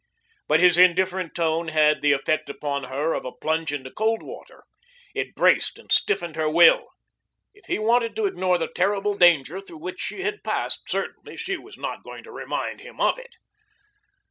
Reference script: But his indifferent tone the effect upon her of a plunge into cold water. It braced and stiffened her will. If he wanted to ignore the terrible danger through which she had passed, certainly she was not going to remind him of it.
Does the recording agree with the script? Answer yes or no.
no